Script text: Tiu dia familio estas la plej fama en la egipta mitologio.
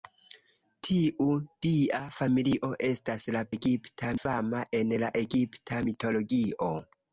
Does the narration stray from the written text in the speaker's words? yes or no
yes